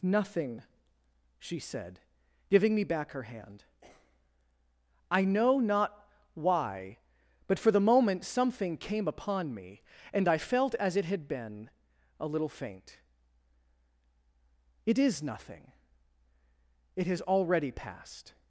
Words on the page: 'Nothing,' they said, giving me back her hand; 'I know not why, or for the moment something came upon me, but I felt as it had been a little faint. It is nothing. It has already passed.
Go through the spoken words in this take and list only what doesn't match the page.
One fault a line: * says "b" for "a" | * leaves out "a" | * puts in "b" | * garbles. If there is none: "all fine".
* says "she" for "they"
* says "but" for "or"
* says "and" for "but"